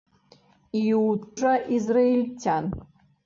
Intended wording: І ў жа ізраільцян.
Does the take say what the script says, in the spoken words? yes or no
yes